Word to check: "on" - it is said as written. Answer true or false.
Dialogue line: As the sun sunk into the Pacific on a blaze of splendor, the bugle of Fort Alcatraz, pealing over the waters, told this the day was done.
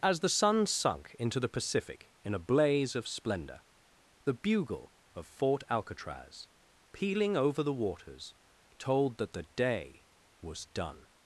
false